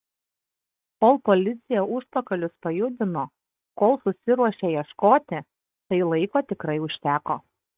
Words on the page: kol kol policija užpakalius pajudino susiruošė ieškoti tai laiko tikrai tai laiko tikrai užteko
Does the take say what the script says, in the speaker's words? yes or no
no